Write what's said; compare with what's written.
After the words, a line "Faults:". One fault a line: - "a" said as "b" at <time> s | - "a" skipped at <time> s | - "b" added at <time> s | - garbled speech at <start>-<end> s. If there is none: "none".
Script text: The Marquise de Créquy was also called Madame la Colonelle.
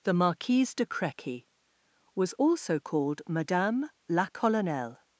The Marquise de Créquy was also called Madame la Colonelle.
Faults:
none